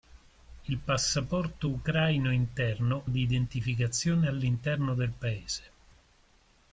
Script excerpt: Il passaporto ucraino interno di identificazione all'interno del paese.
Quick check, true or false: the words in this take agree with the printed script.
true